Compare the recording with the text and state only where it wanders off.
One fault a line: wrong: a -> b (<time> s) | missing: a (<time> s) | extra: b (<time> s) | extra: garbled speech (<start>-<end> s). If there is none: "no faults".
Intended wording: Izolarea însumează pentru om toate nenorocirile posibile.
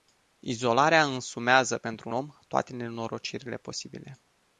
no faults